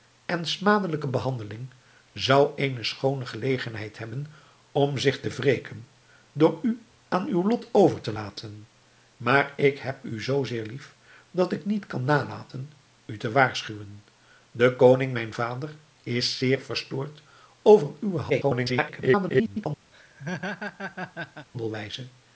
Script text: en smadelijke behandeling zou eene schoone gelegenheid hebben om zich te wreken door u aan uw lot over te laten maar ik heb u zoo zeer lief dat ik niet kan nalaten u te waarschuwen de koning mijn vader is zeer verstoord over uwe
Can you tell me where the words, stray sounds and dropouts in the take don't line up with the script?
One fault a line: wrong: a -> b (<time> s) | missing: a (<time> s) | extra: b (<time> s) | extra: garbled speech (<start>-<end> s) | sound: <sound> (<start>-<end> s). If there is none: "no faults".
extra: garbled speech (18.3-19.7 s)
sound: laugh (19.9-21.5 s)